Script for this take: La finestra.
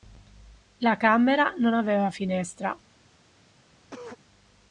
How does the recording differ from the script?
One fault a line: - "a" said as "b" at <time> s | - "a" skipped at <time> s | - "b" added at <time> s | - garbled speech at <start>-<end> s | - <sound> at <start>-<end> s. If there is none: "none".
- "camera non aveva" added at 1.0 s
- cough at 3.8-4.2 s